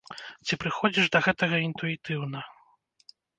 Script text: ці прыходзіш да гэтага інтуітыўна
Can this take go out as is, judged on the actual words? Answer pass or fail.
pass